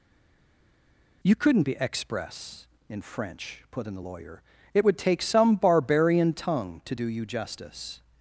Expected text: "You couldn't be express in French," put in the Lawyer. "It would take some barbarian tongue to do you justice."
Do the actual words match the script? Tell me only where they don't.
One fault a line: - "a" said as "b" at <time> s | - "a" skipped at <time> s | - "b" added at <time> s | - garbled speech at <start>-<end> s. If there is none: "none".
none